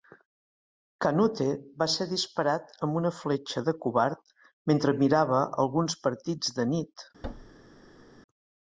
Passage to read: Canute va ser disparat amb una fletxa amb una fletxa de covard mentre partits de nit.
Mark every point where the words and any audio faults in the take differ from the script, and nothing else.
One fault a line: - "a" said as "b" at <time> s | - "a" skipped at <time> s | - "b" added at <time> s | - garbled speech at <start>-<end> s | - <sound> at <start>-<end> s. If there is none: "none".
- "amb una fletxa" skipped at 3.6 s
- "mirava alguns" added at 5.0 s
- thud at 7.2-8.2 s